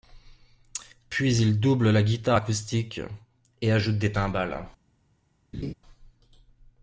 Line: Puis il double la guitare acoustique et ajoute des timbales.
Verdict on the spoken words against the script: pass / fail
pass